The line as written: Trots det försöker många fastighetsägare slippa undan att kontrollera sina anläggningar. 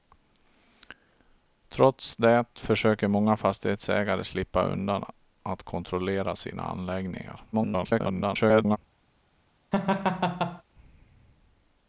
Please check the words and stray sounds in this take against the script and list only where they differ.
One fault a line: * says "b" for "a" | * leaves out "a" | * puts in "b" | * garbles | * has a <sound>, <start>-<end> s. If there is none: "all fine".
* garbles
* has a laugh, 9.7-10.6 s